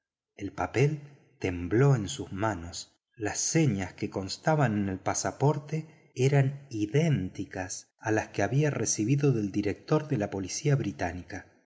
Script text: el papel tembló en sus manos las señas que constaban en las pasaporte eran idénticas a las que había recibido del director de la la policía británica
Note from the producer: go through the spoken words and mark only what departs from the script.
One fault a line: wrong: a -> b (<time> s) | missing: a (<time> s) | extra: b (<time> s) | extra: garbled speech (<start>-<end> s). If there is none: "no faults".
wrong: las -> el (4.9 s)
missing: la (10.3 s)